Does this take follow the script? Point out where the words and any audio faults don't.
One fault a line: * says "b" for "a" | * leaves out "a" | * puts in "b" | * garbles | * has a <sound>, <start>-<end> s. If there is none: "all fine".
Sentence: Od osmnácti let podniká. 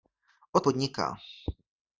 * leaves out "osmnácti let"